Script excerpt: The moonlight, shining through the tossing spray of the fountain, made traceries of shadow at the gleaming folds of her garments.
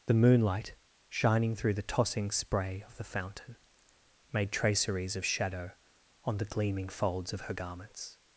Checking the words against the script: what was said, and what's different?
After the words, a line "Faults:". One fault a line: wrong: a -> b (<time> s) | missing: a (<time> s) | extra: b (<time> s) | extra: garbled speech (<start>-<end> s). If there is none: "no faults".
The moonlight, shining through the tossing spray of the fountain, made traceries of shadow on the gleaming folds of her garments.
Faults:
wrong: at -> on (6.2 s)